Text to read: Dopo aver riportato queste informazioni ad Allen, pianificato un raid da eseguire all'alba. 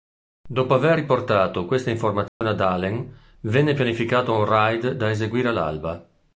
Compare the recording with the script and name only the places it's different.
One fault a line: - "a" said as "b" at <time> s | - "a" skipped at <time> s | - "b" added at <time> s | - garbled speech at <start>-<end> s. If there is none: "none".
- "venne" added at 3.4 s